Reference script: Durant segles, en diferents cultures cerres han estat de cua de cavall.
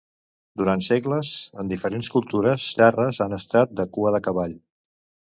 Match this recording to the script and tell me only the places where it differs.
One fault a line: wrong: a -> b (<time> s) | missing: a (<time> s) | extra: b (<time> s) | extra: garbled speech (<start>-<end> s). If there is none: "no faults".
no faults